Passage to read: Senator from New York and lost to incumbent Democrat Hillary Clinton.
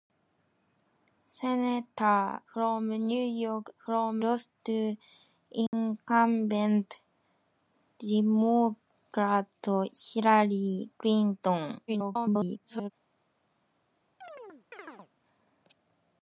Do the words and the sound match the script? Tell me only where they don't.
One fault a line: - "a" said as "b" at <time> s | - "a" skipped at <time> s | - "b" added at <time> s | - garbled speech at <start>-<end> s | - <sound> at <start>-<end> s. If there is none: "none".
- "and" said as "from" at 3.8 s
- dropout at 5.7-5.7 s
- garbled speech at 11.9-12.9 s
- chirp at 14.2-15.1 s